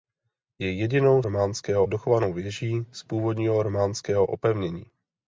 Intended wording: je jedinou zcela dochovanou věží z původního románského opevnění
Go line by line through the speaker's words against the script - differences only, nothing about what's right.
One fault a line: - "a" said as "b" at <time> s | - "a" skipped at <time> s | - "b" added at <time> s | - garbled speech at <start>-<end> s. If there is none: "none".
- "zcela" said as "románského" at 1.2 s